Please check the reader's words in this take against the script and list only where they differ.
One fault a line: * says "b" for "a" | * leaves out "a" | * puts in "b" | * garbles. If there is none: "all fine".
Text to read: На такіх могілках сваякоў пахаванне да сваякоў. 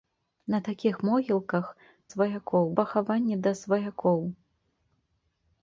all fine